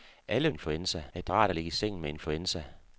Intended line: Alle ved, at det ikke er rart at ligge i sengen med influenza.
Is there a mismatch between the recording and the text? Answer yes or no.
yes